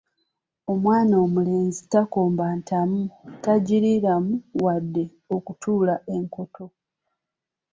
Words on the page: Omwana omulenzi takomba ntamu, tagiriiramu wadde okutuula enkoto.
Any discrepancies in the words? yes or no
no